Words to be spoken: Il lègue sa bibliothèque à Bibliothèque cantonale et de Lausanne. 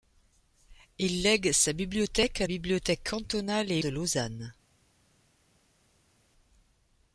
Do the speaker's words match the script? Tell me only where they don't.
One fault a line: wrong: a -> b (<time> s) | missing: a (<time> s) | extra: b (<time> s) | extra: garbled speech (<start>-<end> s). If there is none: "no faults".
no faults